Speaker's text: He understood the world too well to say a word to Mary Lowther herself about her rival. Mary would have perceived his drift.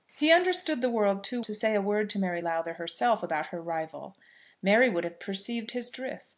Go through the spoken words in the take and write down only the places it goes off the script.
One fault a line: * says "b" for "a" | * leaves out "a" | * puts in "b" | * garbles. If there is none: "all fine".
* leaves out "well"